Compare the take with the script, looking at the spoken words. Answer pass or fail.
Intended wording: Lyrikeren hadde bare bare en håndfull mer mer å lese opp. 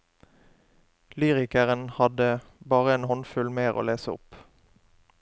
fail